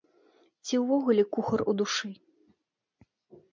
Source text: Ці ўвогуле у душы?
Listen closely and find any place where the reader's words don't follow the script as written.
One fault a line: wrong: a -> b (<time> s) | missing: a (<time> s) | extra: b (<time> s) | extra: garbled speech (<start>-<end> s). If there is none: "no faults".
extra: кухар (1.4 s)